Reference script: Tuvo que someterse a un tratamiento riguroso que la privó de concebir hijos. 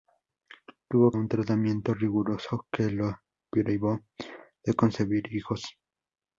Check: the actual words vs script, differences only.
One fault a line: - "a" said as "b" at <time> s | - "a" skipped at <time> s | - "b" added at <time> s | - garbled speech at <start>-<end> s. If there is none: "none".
- "que someterse" skipped at 1.1 s